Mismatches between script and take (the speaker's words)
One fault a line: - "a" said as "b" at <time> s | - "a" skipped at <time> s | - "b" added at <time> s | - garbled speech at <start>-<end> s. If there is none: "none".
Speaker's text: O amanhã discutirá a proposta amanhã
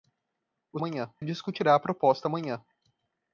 none